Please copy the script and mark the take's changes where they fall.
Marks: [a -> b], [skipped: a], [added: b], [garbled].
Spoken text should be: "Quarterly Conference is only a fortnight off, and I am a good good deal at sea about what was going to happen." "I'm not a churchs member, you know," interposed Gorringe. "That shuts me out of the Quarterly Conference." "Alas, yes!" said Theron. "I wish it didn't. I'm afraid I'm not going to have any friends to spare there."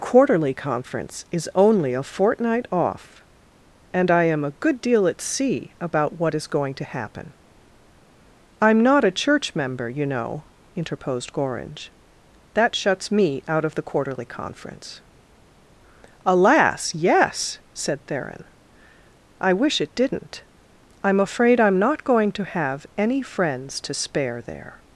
"Quarterly Conference is only a fortnight off, and I am a good [skipped: good] deal at sea about what [was -> is] going to happen." "I'm not a [churchs -> church] member, you know," interposed Gorringe. "That shuts me out of the Quarterly Conference." "Alas, yes!" said Theron. "I wish it didn't. I'm afraid I'm not going to have any friends to spare there."